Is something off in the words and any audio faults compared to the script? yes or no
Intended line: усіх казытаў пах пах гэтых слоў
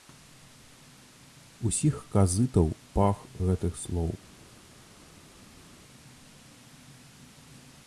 yes